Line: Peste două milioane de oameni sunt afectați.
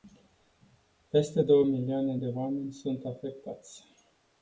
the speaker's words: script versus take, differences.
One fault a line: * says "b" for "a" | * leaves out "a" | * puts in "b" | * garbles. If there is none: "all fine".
all fine